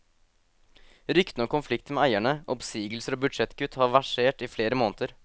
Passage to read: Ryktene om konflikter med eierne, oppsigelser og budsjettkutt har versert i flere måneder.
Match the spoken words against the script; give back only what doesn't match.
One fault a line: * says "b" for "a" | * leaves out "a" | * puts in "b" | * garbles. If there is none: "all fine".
all fine